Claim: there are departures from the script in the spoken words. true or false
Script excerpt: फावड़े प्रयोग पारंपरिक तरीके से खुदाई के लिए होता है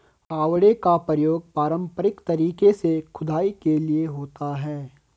true